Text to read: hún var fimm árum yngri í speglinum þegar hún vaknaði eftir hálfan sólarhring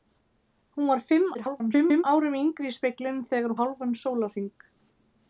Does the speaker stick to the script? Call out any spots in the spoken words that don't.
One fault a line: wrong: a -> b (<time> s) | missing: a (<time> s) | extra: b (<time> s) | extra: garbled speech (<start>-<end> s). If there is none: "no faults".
extra: garbled speech (1.3-2.0 s)
missing: hún vaknaði eftir (3.6 s)